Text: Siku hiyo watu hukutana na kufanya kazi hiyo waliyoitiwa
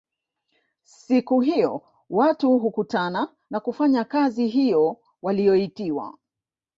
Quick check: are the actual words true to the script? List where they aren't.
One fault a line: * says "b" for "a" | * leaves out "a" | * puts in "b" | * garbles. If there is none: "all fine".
all fine